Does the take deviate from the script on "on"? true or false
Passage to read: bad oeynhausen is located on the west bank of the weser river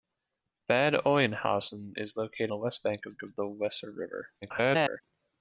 true